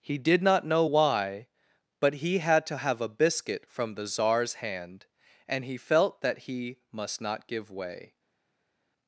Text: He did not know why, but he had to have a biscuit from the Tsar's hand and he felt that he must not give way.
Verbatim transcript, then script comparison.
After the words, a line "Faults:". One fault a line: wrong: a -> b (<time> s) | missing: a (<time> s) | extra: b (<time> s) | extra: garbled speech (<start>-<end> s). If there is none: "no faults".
He did not know why, but he had to have a biscuit from the Tsar's hand and he felt that he must not give way.
Faults:
no faults